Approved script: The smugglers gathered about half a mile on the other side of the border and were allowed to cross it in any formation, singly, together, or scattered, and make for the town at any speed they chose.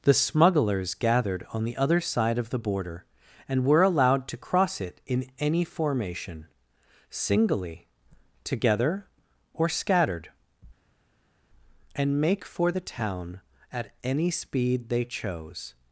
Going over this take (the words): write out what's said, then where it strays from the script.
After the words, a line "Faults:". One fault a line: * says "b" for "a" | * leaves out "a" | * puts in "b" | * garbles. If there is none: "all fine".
The smugglers gathered on the other side of the border and were allowed to cross it in any formation, singly, together, or scattered, and make for the town at any speed they chose.
Faults:
* leaves out "about half a mile"